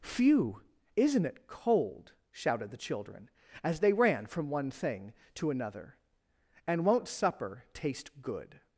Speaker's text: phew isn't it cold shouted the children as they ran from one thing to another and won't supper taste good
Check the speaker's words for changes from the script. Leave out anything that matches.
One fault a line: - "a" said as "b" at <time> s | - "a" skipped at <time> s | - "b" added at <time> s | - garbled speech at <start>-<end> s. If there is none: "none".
none